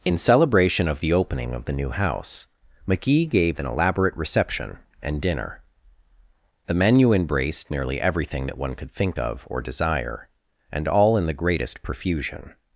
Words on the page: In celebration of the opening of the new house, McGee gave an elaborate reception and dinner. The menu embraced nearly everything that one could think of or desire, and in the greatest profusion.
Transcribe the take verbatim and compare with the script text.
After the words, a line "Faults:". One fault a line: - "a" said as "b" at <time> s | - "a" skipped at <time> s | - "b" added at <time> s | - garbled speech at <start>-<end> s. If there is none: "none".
In celebration of the opening of the new house, McGee gave an elaborate reception and dinner. The menu embraced nearly everything that one could think of or desire, and all in the greatest profusion.
Faults:
- "all" added at 10.9 s